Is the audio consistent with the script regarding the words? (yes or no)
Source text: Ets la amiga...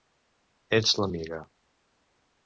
yes